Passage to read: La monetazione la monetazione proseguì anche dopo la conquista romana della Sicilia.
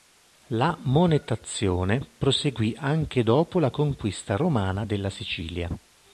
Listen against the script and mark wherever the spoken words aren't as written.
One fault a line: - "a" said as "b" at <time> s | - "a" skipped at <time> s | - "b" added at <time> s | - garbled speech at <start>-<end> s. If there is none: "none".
- "la monetazione" skipped at 2.0 s